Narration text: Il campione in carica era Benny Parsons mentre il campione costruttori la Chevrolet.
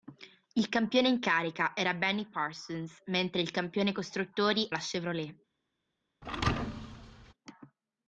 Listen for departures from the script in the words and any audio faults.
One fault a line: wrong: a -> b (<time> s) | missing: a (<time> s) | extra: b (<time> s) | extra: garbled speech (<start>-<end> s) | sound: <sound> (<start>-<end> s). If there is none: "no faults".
sound: thud (6.2-7.3 s)